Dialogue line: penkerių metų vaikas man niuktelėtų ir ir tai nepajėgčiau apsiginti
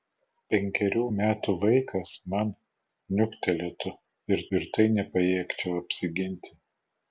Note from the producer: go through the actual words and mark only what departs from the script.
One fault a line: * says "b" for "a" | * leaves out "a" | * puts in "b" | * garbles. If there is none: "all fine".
all fine